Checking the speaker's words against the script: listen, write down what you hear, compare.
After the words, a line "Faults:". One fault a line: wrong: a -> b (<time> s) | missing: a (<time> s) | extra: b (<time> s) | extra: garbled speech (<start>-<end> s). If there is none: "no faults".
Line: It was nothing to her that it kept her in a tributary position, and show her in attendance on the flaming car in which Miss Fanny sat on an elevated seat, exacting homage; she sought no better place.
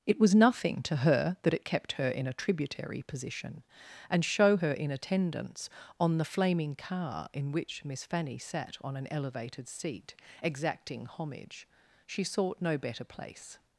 It was nothing to her that it kept her in a tributary position, and show her in attendance on the flaming car in which Miss Fanny sat on an elevated seat, exacting homage; she sought no better place.
Faults:
no faults